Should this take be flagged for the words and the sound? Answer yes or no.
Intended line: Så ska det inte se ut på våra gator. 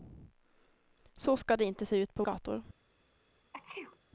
yes